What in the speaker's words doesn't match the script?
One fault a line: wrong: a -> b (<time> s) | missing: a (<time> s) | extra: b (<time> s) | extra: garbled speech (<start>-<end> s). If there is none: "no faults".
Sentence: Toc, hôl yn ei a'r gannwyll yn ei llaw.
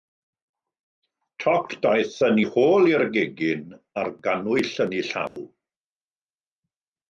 wrong: hôl -> daeth (1.8 s)
extra: hôl i'r gegin (2.6 s)